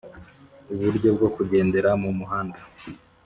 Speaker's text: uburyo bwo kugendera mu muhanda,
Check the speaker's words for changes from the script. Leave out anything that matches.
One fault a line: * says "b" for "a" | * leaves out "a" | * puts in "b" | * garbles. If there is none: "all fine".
all fine